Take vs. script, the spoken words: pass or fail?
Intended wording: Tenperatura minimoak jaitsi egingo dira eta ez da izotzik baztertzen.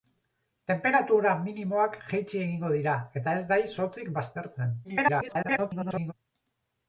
fail